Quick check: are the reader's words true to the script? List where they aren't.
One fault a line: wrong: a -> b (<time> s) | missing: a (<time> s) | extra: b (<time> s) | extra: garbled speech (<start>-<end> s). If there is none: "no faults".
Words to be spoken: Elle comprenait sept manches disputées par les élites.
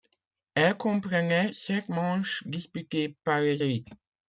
no faults